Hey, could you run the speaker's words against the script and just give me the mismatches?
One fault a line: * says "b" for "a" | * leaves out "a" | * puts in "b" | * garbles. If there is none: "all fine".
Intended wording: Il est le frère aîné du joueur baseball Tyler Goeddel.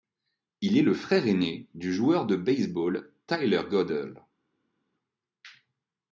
* puts in "de"